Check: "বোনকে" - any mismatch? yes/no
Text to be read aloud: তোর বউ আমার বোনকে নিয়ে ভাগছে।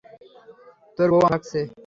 yes